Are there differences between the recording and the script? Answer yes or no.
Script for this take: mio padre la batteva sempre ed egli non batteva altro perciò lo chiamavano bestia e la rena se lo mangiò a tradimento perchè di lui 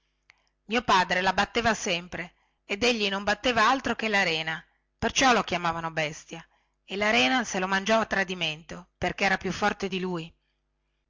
yes